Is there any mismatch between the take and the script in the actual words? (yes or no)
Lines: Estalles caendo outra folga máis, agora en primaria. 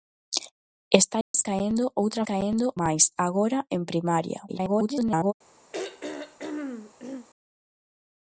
yes